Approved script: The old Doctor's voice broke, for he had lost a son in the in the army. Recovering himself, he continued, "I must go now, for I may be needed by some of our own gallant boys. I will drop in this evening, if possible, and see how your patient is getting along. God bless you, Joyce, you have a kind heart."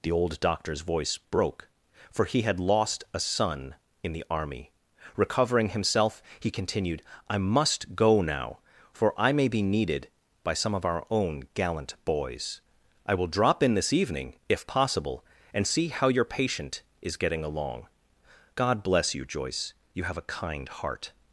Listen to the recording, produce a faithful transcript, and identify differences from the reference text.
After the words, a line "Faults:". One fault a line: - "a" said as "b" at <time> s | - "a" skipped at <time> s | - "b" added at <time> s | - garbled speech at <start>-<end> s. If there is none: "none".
The old Doctor's voice broke, for he had lost a son in the army. Recovering himself, he continued, "I must go now, for I may be needed by some of our own gallant boys. I will drop in this evening, if possible, and see how your patient is getting along. God bless you, Joyce, you have a kind heart."
Faults:
- "in the" skipped at 4.2 s